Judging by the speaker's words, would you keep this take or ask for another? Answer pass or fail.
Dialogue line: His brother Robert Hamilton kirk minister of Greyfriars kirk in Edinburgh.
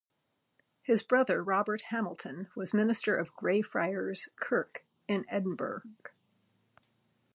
fail